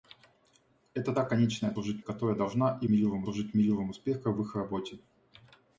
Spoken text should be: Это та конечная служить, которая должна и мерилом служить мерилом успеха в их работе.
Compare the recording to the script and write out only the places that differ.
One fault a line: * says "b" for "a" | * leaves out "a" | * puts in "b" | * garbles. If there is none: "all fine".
all fine